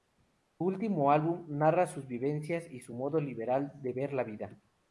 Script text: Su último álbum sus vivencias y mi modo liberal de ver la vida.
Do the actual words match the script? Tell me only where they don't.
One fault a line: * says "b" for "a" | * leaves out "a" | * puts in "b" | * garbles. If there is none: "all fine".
* puts in "narra"
* says "su" for "mi"